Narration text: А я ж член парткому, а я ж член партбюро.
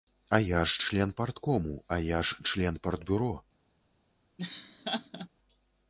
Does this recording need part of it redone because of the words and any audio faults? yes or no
yes